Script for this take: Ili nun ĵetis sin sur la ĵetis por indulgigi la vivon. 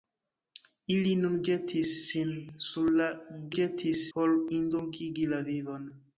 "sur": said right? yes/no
yes